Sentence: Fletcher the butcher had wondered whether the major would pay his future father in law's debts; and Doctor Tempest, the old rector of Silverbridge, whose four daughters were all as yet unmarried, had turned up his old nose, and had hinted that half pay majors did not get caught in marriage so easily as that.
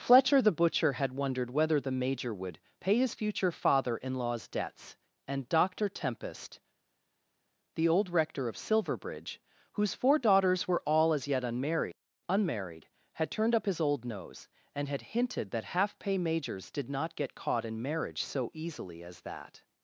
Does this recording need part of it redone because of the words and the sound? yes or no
yes